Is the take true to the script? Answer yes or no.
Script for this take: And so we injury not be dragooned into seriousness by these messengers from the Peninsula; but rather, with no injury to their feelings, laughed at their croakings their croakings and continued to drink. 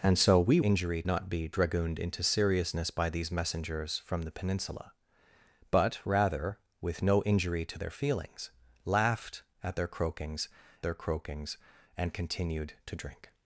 yes